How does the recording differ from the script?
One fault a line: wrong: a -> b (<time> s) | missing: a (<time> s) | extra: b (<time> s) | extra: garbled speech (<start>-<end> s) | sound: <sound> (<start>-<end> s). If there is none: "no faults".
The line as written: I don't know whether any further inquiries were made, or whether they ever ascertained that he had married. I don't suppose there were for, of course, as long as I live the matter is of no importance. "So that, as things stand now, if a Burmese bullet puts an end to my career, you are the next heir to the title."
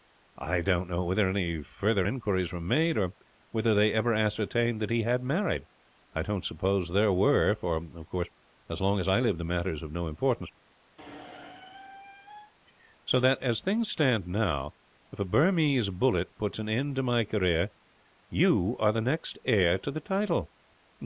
sound: squeak (11.0-12.5 s)